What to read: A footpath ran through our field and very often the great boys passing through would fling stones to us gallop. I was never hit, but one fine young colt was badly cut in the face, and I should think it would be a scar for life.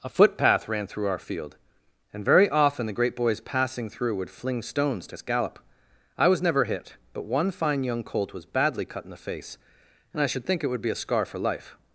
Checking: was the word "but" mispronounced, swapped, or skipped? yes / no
no